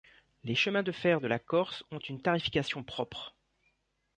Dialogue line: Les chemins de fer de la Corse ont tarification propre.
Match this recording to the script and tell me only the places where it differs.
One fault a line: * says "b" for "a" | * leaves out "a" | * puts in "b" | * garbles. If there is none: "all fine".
* puts in "une"